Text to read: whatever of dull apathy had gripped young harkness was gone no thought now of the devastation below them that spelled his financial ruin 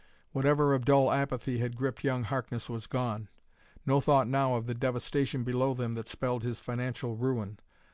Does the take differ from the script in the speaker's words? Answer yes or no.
no